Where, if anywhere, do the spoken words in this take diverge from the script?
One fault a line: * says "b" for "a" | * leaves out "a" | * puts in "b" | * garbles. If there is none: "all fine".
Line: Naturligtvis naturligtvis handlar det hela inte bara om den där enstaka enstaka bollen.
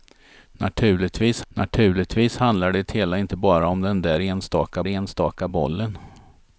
all fine